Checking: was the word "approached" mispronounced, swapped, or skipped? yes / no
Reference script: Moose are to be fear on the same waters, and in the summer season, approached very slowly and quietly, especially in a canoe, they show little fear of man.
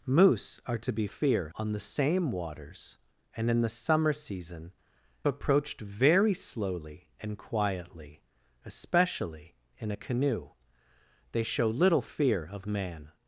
no